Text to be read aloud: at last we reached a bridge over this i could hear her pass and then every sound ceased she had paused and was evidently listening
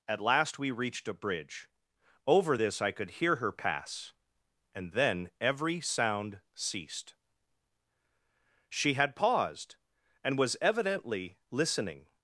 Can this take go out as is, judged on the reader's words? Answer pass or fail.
pass